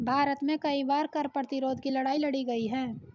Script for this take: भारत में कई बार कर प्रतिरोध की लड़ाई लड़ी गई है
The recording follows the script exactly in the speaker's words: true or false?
true